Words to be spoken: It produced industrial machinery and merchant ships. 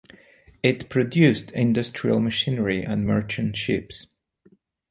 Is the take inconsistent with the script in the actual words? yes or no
no